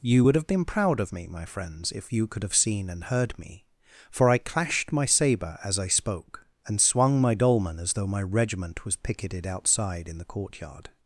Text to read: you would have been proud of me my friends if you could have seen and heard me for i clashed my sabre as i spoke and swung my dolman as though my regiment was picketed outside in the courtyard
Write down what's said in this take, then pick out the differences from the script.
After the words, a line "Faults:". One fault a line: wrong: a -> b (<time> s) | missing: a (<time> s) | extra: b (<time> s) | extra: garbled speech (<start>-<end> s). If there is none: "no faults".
you would have been proud of me my friends if you could have seen and heard me for i clashed my sabre as i spoke and swung my dolman as though my regiment was picketed outside in the courtyard
Faults:
no faults